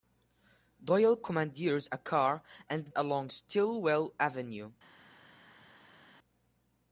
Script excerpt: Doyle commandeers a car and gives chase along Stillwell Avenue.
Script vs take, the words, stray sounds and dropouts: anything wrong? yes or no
yes